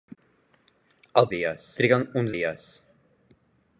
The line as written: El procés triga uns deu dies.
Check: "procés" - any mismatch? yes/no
yes